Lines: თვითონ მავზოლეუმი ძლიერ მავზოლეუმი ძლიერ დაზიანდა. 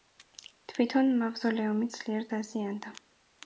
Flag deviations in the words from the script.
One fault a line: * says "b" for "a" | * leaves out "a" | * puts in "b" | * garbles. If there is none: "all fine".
* leaves out "მავზოლეუმი ძლიერ"